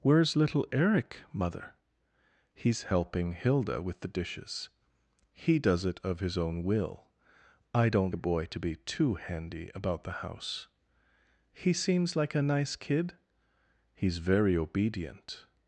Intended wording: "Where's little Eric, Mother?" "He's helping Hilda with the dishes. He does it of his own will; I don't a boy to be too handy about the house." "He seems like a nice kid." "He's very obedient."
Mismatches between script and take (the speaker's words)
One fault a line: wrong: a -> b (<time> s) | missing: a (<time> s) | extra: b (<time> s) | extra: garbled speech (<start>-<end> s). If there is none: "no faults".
no faults